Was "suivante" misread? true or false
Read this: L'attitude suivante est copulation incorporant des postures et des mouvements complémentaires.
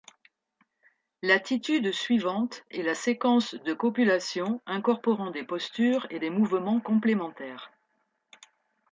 false